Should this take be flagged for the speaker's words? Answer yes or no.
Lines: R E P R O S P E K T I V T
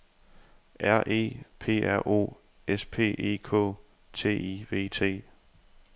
no